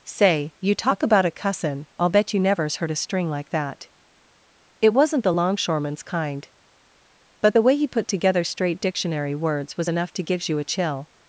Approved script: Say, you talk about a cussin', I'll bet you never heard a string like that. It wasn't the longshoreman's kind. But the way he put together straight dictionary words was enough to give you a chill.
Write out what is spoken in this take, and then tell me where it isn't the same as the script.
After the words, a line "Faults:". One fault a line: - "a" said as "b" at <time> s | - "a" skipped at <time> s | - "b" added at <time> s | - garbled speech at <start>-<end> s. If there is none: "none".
Say, you talk about a cussin', I'll bet you nevers heard a string like that. It wasn't the longshoreman's kind. But the way he put together straight dictionary words was enough to gives you a chill.
Faults:
- "never" said as "nevers" at 2.4 s
- "give" said as "gives" at 10.2 s